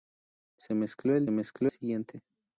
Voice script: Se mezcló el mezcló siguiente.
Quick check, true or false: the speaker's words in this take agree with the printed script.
true